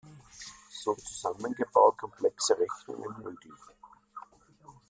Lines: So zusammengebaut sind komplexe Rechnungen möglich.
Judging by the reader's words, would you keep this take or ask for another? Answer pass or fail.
fail